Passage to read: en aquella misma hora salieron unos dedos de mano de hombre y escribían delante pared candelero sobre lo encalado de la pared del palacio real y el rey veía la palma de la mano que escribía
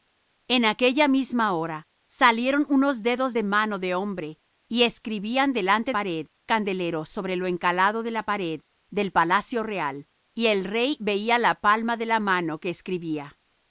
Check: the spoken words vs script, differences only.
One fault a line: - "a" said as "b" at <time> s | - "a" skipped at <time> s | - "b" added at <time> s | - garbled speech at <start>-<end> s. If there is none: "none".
none